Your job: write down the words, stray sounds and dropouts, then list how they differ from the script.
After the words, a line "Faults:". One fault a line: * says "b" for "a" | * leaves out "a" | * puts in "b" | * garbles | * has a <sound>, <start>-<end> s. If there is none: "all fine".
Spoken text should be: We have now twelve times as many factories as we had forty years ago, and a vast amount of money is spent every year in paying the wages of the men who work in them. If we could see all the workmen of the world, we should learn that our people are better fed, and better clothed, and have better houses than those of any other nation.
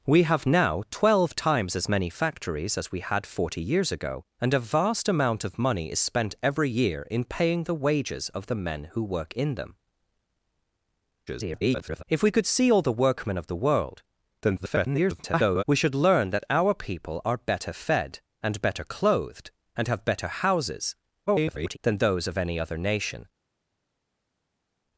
We have now twelve times as many factories as we had forty years ago, and a vast amount of money is spent every year in paying the wages of the men who work in them. [garbled] If we could see all the workmen of the world, [garbled] we should learn that our people are better fed, and better clothed, and have better houses [garbled] than those of any other nation.
Faults:
* garbles
* garbles
* garbles